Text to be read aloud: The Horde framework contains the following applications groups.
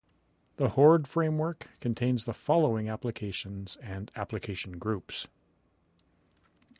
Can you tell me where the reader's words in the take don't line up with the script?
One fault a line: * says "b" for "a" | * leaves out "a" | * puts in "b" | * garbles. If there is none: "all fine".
* puts in "and application"